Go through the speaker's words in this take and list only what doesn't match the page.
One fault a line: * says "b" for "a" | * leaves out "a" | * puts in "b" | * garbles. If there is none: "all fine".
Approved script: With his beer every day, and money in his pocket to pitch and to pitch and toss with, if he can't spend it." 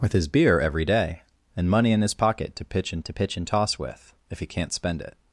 all fine